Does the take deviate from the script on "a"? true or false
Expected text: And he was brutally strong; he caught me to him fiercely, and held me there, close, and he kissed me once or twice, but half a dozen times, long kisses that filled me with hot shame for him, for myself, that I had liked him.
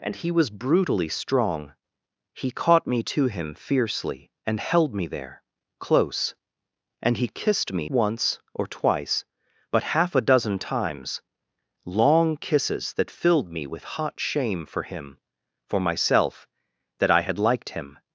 false